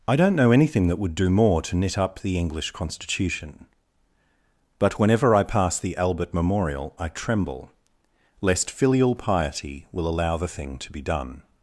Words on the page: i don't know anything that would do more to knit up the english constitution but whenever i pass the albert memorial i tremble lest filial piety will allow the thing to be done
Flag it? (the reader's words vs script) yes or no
no